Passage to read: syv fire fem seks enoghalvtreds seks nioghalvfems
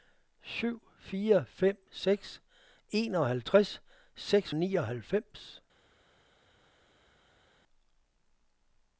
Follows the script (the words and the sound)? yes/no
yes